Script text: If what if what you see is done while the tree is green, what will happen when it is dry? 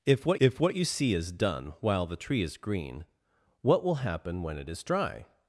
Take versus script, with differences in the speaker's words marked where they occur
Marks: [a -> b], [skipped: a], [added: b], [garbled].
If what if what you see is done while the tree is green, what will happen when it is dry?